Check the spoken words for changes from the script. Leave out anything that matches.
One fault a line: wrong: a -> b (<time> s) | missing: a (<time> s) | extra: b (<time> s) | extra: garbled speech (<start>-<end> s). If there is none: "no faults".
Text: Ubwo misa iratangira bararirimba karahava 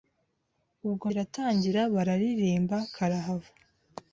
missing: misa (1.1 s)